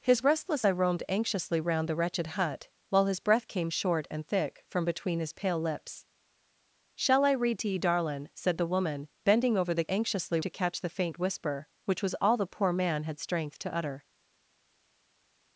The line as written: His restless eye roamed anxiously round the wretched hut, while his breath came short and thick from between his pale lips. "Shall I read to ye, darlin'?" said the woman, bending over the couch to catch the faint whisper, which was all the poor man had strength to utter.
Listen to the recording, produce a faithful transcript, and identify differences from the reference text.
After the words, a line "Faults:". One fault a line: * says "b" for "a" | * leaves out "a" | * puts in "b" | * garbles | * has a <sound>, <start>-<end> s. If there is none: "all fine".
His restless eye roamed anxiously round the wretched hut, while his breath came short and thick from between his pale lips. "Shall I read to ye, darlin'?" said the woman, bending over the anxiously to catch the faint whisper, which was all the poor man had strength to utter.
Faults:
* says "anxiously" for "couch"